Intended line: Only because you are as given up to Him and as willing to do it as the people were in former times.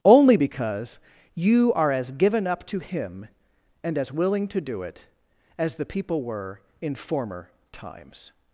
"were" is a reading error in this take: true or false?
false